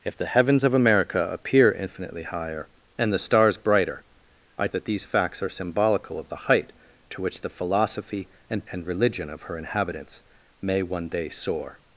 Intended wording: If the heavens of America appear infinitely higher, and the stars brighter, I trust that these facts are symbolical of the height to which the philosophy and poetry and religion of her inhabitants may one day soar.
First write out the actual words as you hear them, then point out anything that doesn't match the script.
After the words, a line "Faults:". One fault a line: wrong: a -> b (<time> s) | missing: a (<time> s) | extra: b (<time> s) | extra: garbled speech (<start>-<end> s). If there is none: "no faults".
If the heavens of America appear infinitely higher, and the stars brighter, I that these facts are symbolical of the height to which the philosophy and and religion of her inhabitants may one day soar.
Faults:
missing: trust (4.7 s)
missing: poetry (8.7 s)